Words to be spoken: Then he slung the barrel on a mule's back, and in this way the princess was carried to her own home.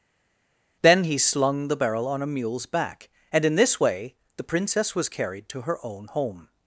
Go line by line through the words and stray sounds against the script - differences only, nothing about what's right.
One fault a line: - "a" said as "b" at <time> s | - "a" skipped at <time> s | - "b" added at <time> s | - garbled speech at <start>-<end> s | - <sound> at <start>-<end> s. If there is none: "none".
none